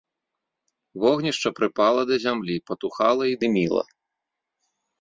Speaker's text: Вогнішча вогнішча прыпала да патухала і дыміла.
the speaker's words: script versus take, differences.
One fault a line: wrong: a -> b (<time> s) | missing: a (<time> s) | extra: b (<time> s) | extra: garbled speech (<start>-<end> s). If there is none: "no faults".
missing: вогнішча (1.5 s)
extra: зямлі (2.3 s)